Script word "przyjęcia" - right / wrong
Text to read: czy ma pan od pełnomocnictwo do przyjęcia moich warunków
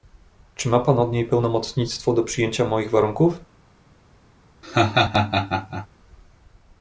right